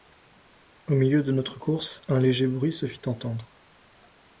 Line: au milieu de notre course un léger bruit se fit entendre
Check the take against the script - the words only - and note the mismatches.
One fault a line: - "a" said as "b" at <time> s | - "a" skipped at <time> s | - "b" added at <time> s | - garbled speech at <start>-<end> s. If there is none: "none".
none